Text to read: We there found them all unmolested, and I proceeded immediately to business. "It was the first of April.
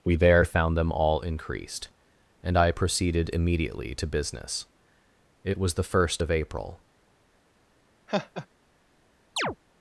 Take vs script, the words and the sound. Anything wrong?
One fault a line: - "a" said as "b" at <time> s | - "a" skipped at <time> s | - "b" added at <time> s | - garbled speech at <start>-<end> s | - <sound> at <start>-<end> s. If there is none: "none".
- "unmolested" said as "increased" at 1.2 s
- laugh at 8.1-8.5 s
- chirp at 9.4-9.6 s